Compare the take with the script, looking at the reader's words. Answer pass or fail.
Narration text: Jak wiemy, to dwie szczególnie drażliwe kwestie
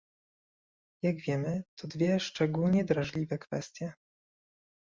pass